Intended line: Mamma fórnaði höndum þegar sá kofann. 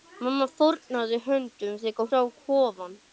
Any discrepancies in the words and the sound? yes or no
no